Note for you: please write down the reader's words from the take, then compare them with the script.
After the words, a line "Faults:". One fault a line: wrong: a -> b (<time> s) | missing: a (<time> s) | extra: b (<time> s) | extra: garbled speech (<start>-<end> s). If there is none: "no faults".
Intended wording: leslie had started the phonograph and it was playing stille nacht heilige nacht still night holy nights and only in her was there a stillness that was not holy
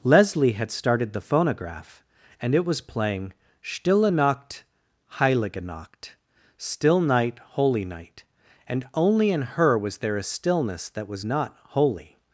leslie had started the phonograph and it was playing stille nacht heilige nacht still night holy night and only in her was there a stillness that was not holy
Faults:
wrong: nights -> night (7.8 s)